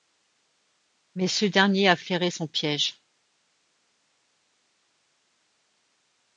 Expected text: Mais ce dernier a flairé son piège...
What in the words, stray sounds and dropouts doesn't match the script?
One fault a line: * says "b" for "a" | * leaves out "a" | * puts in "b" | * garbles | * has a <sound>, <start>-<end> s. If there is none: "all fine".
all fine